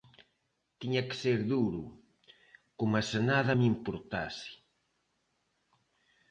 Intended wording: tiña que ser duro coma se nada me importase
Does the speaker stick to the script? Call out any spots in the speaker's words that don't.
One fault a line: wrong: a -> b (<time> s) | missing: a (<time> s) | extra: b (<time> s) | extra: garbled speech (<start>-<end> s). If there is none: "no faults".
no faults